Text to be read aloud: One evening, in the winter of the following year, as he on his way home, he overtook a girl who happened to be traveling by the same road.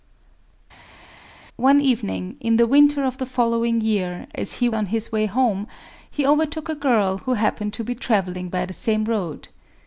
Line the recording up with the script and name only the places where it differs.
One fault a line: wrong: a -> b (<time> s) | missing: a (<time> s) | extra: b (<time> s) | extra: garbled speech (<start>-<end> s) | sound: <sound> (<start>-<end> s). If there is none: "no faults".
no faults